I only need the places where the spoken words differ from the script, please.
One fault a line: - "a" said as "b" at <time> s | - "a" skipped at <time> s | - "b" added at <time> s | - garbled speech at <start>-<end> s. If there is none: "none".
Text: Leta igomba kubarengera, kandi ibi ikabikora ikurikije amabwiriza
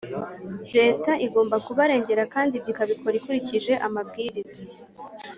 - "ibi" said as "ibyo" at 2.5 s